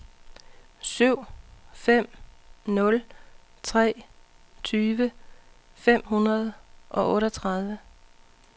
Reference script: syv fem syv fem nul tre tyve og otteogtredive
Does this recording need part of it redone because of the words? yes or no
yes